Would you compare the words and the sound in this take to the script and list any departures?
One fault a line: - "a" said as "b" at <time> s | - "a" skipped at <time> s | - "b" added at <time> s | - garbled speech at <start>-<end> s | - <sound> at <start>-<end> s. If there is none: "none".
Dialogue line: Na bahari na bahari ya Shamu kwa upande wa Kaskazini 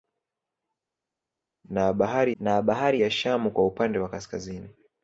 none